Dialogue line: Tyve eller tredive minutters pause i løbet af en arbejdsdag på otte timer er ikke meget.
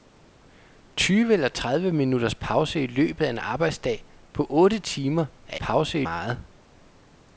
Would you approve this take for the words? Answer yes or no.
no